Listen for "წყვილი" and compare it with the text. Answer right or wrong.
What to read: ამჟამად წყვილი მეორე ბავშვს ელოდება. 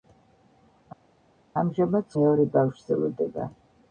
wrong